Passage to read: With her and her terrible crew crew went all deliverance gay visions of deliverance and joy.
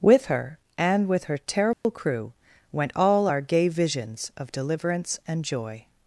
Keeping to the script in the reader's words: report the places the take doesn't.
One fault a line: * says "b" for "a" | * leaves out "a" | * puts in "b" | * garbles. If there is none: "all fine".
* puts in "with"
* leaves out "crew"
* says "our" for "deliverance"